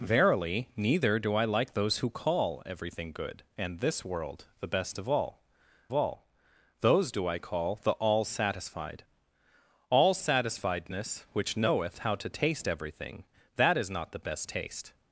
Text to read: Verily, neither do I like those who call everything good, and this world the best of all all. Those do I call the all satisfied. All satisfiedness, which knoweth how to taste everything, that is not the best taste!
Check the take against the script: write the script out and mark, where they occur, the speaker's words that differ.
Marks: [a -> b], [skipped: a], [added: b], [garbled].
Verily, neither do I like those who call everything good, and this world the best of all all. Those do I call the all satisfied. All satisfiedness, which knoweth how to taste everything, that is not the best taste!